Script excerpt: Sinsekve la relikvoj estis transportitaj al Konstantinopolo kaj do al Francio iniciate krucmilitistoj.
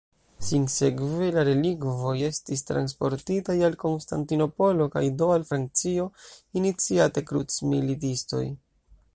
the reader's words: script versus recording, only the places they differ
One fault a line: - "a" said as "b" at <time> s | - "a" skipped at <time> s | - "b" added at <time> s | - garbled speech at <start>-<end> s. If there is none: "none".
none